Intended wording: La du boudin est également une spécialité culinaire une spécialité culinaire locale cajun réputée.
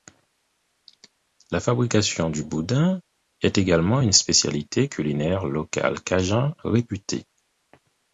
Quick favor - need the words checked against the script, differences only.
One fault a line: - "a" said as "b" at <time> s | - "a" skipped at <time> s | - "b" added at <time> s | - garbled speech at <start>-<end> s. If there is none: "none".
- "fabrication" added at 1.6 s
- "une spécialité culinaire" skipped at 5.5 s